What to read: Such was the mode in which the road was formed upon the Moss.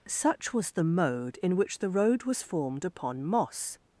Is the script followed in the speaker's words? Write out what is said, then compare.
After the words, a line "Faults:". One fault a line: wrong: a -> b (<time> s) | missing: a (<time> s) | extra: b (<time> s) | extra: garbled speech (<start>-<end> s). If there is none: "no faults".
Such was the mode in which the road was formed upon Moss.
Faults:
missing: the (3.2 s)